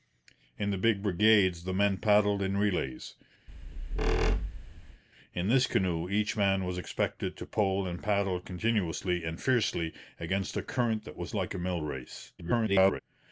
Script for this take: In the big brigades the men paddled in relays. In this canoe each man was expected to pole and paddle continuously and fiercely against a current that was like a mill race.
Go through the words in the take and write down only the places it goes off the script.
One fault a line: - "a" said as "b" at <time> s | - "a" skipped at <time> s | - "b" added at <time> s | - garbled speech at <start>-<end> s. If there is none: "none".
- garbled speech at 12.4-13.0 s